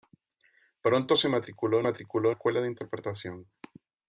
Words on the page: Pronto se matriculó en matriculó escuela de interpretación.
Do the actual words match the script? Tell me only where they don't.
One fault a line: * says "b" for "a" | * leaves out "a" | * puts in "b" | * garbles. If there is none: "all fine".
all fine